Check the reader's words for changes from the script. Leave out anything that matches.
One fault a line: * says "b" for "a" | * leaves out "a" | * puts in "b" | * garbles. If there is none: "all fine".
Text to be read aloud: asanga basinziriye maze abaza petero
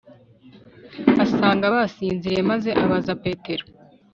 all fine